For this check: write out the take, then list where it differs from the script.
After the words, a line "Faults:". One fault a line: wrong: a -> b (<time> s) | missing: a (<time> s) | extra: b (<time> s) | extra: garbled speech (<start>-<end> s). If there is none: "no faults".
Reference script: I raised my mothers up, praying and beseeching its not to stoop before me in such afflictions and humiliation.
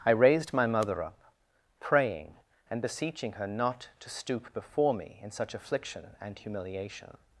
I raised my mother up, praying and beseeching her not to stoop before me in such affliction and humiliation.
Faults:
wrong: mothers -> mother (0.7 s)
wrong: its -> her (3.3 s)
wrong: afflictions -> affliction (5.5 s)